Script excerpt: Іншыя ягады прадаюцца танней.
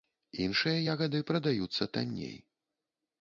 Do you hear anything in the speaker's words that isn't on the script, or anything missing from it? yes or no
no